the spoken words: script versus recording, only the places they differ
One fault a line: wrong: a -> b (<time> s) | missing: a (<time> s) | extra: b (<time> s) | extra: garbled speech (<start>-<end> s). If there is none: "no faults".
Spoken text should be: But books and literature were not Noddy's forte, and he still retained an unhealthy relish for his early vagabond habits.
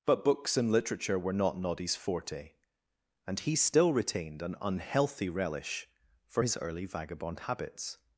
no faults